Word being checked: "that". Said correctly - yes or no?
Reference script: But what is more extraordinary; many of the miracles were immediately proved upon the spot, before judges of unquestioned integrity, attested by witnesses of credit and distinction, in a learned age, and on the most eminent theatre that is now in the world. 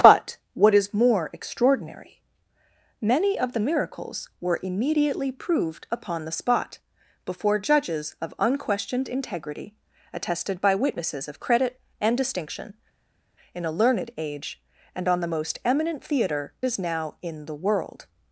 no